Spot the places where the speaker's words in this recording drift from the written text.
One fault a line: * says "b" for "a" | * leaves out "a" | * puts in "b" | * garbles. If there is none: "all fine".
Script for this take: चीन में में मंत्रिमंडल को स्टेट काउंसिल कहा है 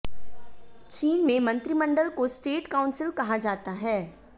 * leaves out "में"
* puts in "जाता"